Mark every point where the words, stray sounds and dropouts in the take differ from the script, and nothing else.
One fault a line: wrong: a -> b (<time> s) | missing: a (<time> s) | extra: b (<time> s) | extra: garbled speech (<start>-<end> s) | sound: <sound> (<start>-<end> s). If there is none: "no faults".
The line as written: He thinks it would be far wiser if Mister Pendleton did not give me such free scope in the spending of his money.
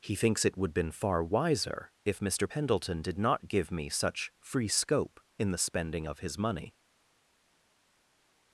wrong: be -> been (0.7 s)